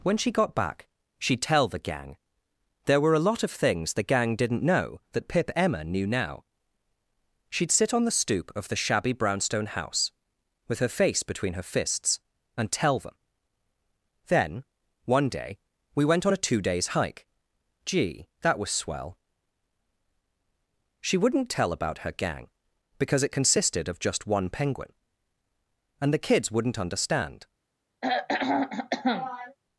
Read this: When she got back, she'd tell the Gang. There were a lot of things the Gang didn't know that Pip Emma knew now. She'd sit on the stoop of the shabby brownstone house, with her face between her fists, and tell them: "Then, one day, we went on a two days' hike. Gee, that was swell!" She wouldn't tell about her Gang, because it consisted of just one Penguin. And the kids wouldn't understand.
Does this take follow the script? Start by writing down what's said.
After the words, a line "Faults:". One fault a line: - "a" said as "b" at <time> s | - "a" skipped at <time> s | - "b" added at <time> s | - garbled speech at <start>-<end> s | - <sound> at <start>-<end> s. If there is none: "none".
When she got back, she'd tell the Gang. There were a lot of things the Gang didn't know that Pip Emma knew now. She'd sit on the stoop of the shabby brownstone house, with her face between her fists, and tell them: "Then, one day, we went on a two days' hike. Gee, that was swell!" She wouldn't tell about her Gang, because it consisted of just one Penguin. And the kids wouldn't understand.
Faults:
- throat clearing at 28.0-29.6 s